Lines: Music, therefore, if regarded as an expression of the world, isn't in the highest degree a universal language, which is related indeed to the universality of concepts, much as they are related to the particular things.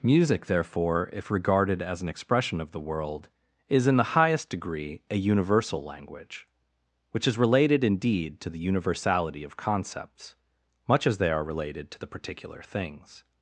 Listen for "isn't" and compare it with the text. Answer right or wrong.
wrong